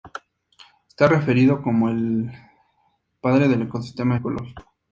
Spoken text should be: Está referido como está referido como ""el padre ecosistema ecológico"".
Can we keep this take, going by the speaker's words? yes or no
no